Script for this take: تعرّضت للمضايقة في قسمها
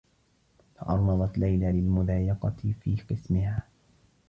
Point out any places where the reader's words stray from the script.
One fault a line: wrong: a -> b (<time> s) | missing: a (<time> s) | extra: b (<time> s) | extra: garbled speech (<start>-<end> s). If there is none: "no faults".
extra: ليلى (1.4 s)